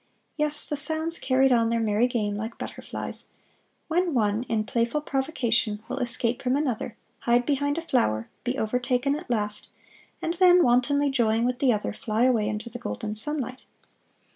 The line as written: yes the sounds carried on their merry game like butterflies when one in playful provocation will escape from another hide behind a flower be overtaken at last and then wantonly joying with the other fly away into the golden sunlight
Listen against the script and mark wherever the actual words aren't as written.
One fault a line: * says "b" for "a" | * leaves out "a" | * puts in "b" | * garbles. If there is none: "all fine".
all fine